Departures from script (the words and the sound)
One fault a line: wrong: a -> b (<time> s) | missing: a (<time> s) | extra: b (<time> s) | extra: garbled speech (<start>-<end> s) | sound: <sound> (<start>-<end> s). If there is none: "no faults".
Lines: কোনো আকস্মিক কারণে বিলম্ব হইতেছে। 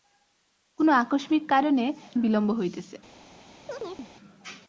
sound: chirp (3.7-4.1 s)